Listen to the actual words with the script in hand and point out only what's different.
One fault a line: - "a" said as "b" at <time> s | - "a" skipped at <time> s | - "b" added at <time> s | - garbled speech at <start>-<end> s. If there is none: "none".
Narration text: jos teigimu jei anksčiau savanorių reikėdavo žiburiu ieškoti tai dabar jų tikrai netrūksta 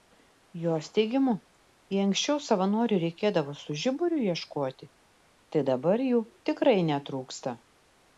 - "su" added at 3.6 s